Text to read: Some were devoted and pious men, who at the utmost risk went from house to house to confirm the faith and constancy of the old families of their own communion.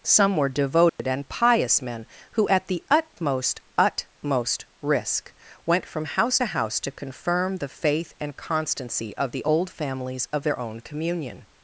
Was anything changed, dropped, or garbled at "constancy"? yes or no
no